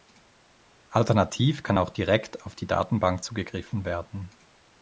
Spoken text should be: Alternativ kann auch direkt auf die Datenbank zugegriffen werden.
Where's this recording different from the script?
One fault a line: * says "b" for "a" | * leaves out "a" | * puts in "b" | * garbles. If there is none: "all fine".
all fine